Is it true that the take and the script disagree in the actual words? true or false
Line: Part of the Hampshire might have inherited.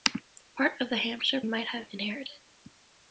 false